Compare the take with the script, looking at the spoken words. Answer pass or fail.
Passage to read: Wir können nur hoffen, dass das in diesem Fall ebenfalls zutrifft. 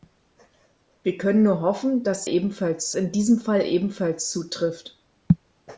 fail